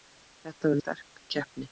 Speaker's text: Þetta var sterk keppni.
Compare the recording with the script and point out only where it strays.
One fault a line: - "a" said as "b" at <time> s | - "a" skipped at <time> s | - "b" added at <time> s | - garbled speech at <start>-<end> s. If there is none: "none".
none